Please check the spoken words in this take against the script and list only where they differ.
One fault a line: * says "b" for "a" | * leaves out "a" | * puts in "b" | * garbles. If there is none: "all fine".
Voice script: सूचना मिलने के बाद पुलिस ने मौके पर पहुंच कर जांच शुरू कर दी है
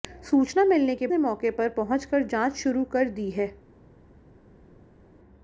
* leaves out "बाद पुलिस"